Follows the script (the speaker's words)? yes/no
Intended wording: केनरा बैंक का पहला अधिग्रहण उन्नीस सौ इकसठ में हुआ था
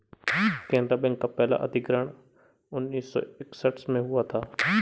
yes